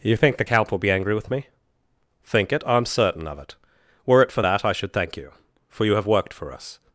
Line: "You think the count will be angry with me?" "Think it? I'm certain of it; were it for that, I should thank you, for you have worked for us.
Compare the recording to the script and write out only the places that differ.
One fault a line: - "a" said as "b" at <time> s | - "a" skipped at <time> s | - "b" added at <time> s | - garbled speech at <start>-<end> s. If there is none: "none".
none